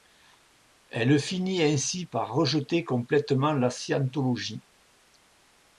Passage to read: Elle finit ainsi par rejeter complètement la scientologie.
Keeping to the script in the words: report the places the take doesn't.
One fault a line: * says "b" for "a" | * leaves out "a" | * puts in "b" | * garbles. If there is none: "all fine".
all fine